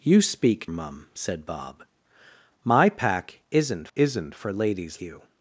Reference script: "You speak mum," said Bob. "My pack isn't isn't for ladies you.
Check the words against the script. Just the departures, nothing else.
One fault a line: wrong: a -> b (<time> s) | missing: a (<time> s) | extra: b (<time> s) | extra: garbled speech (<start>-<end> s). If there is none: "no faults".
no faults